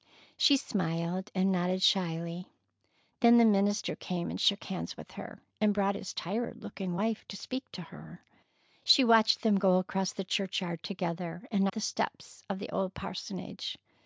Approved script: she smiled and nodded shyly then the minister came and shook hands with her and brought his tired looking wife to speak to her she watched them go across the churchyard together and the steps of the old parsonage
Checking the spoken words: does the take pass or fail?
pass